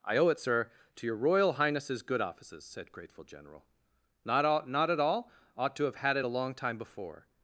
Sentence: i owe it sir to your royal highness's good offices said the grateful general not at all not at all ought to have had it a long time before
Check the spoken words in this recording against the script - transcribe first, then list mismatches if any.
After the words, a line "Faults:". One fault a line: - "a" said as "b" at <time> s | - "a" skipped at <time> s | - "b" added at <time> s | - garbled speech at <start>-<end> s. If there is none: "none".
i owe it sir to your royal highness's good offices said grateful general not all not at all ought to have had it a long time before
Faults:
- "the" skipped at 2.9 s
- "at" skipped at 4.5 s